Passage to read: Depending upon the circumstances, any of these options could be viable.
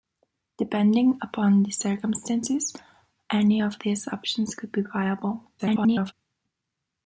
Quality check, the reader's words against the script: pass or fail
fail